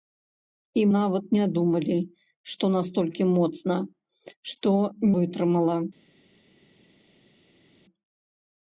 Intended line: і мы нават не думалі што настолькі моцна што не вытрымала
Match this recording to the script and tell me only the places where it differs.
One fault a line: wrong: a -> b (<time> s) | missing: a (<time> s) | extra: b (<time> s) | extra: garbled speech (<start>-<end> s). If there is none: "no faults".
missing: мы (0.8 s)
missing: не (4.8 s)